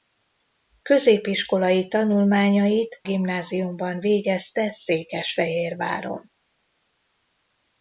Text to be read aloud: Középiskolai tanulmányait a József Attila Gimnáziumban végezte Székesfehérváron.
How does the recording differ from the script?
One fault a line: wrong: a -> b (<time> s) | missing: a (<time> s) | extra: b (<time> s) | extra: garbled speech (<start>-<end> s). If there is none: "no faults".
missing: a József Attila (3.0 s)